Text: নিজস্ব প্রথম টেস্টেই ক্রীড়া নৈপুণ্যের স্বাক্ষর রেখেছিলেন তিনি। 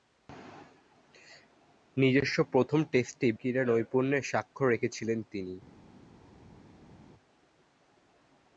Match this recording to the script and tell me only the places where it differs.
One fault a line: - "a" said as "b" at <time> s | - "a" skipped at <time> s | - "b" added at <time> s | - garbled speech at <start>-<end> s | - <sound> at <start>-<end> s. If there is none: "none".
none